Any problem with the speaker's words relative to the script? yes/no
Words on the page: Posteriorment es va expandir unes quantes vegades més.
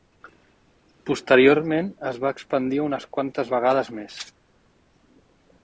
no